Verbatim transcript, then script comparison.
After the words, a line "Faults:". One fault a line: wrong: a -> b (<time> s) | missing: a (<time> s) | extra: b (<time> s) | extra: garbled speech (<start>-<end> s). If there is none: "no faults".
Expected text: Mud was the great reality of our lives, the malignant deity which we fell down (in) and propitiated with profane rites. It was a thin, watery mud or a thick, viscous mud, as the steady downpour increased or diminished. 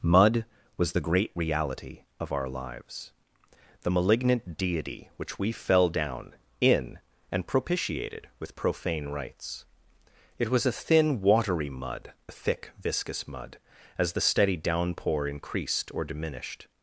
Mud was the great reality of our lives, the malignant deity which we fell down (in) and propitiated with profane rites. It was a thin, watery mud a thick, viscous mud, as the steady downpour increased or diminished.
Faults:
missing: or (12.1 s)